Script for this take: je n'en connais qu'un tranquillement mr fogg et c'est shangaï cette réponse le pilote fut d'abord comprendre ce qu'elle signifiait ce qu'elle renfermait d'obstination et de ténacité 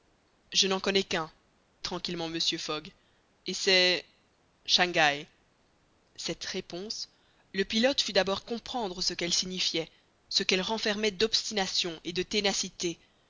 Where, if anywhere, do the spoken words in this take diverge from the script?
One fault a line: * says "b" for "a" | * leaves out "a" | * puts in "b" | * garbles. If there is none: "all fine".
all fine